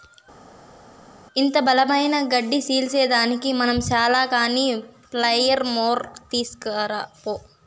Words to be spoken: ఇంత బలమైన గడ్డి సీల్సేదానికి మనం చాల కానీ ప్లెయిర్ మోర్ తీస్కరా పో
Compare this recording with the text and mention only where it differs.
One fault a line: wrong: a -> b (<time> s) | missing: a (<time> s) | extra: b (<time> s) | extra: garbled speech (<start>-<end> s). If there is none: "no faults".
no faults